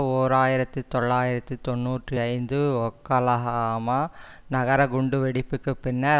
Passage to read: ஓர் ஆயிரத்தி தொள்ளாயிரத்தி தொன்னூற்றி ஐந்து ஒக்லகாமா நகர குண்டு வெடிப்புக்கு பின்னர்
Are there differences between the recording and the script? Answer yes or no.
no